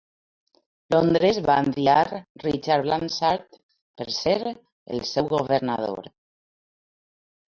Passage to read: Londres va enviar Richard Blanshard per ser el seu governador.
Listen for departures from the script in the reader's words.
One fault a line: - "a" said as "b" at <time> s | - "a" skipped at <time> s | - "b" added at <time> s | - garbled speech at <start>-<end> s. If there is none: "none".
none